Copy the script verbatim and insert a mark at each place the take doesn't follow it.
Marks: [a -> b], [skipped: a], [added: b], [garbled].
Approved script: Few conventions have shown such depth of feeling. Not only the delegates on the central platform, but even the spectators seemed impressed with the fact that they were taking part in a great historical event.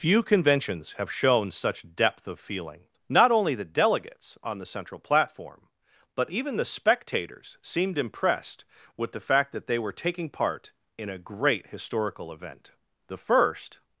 Few conventions have shown such depth of feeling. Not only the delegates on the central platform, but even the spectators seemed impressed with the fact that they were taking part in a great historical event. [added: The first]